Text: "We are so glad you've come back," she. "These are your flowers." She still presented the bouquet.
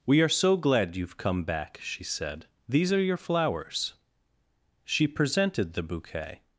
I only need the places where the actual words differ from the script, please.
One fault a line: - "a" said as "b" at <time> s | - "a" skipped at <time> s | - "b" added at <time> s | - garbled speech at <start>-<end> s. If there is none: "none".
- "said" added at 2.0 s
- "still" skipped at 5.1 s